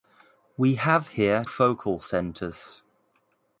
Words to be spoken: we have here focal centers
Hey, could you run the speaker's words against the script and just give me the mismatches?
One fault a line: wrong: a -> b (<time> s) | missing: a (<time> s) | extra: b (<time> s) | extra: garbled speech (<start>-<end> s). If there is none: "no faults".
no faults